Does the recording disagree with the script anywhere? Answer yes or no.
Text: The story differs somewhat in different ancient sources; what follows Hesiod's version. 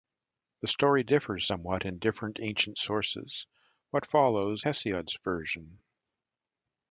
no